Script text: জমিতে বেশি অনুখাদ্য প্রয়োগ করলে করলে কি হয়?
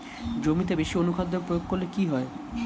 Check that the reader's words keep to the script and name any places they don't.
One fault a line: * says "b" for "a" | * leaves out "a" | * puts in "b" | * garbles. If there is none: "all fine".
* leaves out "করলে"